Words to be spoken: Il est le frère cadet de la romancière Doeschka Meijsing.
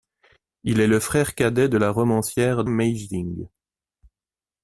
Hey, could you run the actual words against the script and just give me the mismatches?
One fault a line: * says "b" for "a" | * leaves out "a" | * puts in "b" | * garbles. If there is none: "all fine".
* leaves out "Doeschka"